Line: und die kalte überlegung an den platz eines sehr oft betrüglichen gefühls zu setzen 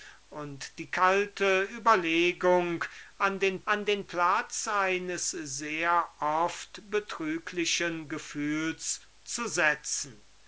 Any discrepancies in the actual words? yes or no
yes